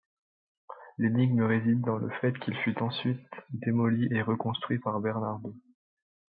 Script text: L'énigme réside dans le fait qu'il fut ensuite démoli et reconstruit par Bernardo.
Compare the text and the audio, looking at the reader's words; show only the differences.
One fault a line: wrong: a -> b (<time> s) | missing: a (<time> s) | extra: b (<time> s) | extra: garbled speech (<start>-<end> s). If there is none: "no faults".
no faults